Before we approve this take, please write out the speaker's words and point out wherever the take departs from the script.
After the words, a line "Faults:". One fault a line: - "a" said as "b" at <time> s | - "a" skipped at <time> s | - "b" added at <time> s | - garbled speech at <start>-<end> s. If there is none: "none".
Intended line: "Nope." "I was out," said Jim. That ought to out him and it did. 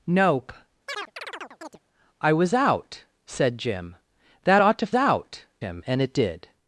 "Nope." "I was out," said Jim. That ought to out him and it did.
Faults:
none